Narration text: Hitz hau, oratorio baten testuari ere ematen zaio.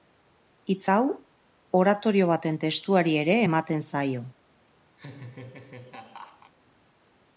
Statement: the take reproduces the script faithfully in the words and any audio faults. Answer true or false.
false